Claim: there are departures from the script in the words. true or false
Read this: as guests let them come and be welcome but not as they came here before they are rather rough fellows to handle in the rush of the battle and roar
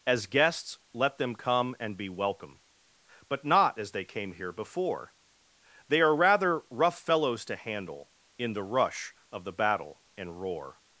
false